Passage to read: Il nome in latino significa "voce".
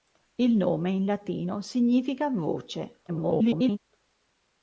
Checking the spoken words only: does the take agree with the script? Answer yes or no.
no